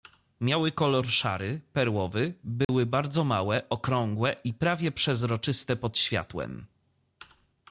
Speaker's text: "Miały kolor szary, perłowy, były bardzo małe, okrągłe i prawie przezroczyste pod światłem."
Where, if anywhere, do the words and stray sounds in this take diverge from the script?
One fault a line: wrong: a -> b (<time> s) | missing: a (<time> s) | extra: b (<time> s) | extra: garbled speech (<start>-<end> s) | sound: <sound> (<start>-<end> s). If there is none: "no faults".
sound: dropout (2.6-2.7 s)